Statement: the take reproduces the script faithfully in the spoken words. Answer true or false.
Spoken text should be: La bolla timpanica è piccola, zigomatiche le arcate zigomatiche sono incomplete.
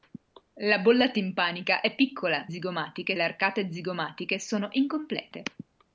true